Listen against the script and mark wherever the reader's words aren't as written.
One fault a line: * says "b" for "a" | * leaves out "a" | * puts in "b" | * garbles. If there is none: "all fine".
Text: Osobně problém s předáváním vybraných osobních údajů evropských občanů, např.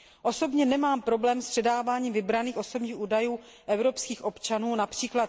* puts in "nemám"